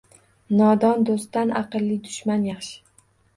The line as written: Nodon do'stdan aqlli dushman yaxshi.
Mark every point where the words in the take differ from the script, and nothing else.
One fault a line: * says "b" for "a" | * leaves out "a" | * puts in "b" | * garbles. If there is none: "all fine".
all fine